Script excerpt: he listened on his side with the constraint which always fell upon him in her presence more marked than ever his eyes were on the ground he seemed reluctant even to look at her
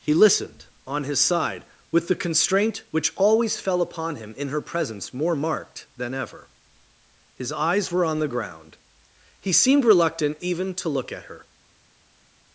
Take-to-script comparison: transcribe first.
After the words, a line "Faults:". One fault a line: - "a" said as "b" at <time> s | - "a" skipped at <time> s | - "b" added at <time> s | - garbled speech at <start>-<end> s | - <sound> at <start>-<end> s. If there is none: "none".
he listened on his side with the constraint which always fell upon him in her presence more marked than ever his eyes were on the ground he seemed reluctant even to look at her
Faults:
none